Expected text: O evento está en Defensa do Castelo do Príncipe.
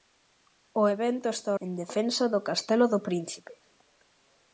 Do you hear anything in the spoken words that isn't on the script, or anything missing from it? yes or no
no